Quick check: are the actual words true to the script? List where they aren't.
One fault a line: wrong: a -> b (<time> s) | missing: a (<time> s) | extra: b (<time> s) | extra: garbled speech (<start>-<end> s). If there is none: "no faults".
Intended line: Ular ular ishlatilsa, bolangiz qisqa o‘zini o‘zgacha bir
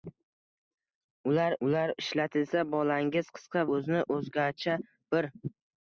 no faults